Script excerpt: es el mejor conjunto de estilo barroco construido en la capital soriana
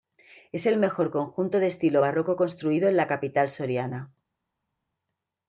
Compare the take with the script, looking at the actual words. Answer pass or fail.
pass